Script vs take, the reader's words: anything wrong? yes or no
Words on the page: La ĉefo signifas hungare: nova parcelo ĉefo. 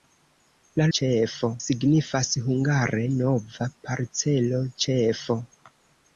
no